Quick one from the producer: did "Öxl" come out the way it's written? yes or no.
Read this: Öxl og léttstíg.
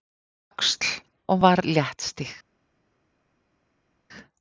yes